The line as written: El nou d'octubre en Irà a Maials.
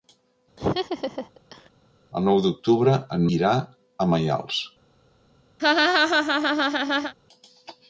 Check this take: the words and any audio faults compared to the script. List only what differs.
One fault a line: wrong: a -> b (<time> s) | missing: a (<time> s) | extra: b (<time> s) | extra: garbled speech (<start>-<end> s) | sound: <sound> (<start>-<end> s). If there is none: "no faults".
sound: laugh (0.6-1.7 s)
sound: laugh (5.6-7.1 s)